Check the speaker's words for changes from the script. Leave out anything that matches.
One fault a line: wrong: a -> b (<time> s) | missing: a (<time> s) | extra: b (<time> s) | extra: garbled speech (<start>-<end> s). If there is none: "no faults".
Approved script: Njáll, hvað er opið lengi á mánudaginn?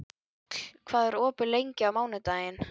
no faults